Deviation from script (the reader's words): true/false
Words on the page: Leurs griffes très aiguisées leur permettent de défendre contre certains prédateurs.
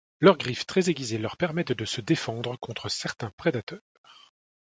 true